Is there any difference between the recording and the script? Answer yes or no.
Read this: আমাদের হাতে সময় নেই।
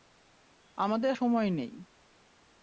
yes